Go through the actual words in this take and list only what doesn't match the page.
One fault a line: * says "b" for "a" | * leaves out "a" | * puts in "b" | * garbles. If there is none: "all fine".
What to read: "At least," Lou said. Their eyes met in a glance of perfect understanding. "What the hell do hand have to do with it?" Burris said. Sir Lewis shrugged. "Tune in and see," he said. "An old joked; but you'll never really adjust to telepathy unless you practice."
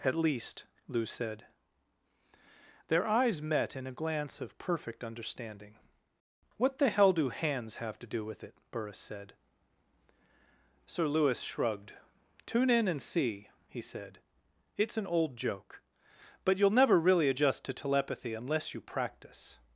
* says "hands" for "hand"
* puts in "It's"
* says "joke" for "joked"